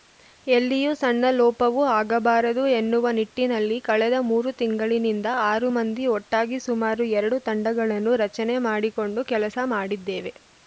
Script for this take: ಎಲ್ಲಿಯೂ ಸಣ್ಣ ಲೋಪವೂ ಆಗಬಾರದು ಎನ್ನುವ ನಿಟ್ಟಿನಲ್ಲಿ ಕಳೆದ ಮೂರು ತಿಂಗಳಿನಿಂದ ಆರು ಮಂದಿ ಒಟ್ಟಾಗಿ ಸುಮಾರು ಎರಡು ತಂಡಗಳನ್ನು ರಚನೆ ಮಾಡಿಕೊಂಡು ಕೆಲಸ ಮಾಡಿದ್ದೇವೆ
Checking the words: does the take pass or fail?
pass